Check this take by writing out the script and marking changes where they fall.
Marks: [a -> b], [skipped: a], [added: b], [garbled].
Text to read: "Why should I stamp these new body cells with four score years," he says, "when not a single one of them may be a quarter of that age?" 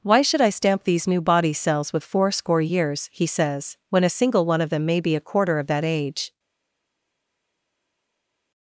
"Why should I stamp these new body cells with four score years," he says, "when [skipped: not] a single one of them may be a quarter of that age?"